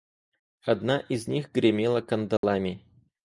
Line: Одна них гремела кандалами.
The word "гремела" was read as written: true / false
true